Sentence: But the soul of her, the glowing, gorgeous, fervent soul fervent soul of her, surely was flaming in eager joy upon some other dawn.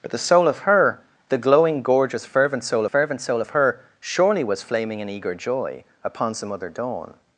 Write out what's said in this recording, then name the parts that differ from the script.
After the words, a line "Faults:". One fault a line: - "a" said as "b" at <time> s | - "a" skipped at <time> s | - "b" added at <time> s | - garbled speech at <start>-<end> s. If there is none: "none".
But the soul of her, the glowing, gorgeous, fervent soul fervent soul of her, surely was flaming in eager joy upon some other dawn.
Faults:
none